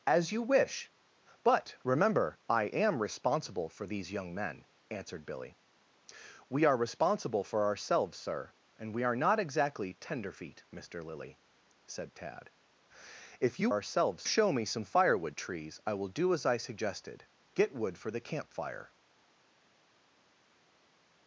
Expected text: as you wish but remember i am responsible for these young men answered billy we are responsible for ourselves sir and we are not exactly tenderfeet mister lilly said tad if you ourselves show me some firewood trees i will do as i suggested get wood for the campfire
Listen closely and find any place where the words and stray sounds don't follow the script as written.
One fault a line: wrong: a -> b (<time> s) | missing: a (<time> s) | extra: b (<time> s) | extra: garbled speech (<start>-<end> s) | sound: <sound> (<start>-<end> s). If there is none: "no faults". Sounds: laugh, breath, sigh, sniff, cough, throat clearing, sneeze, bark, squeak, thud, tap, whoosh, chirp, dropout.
no faults